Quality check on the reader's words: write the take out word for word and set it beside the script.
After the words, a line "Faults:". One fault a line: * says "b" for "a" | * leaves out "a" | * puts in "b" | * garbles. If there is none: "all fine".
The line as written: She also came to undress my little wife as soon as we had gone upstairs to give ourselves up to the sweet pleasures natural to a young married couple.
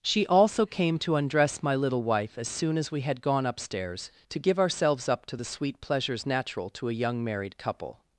She also came to undress my little wife as soon as we had gone upstairs to give ourselves up to the sweet pleasures natural to a young married couple.
Faults:
all fine